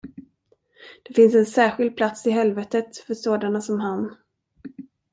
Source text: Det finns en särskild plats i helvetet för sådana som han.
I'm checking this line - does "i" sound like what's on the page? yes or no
yes